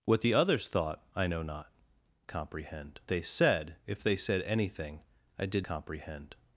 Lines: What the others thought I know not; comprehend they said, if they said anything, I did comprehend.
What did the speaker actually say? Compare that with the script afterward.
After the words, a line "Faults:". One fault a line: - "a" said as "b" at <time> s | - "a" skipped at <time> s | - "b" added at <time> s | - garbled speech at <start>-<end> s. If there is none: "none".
What the others thought I know not; comprehend they said, if they said anything, I did comprehend.
Faults:
none